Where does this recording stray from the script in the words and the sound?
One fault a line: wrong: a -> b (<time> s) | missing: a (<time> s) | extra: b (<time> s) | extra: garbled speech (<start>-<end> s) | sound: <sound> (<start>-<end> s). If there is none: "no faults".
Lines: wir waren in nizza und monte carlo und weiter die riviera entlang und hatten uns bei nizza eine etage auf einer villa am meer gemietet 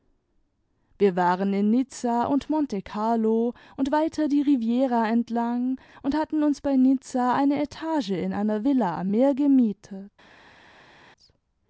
wrong: auf -> in (8.1 s)